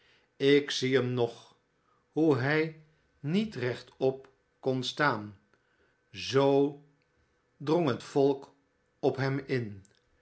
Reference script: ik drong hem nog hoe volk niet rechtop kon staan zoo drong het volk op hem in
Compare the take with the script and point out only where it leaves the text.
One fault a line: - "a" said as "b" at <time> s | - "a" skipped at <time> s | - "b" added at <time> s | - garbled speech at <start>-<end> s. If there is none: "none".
- "drong" said as "zie" at 0.7 s
- "volk" said as "hij" at 2.4 s